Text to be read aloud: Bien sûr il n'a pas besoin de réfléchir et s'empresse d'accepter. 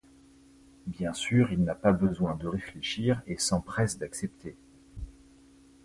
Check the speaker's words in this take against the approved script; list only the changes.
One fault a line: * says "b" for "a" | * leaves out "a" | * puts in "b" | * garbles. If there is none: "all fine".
all fine